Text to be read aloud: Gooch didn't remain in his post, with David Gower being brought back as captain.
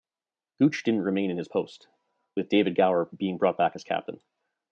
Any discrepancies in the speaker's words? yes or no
no